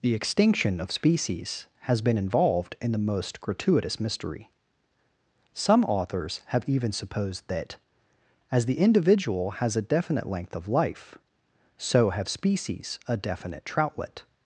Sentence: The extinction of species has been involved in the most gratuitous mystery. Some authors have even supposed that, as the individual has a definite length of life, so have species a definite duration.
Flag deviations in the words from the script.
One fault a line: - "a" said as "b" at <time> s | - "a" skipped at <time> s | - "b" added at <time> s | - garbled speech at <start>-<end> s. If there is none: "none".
- "duration" said as "troutlet" at 13.6 s